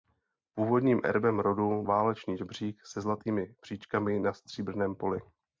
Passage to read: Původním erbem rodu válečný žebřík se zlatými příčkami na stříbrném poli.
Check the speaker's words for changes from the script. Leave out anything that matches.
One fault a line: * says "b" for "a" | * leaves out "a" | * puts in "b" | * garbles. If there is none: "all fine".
all fine